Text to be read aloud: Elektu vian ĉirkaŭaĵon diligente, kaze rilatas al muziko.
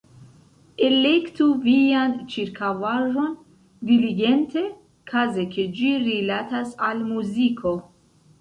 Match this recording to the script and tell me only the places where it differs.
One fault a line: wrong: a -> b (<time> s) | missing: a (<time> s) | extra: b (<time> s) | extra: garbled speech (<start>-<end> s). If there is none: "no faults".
extra: ke ĝi (5.6 s)